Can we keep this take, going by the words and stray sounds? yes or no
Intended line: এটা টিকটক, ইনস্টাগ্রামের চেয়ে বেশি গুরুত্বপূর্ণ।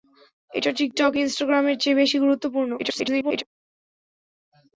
no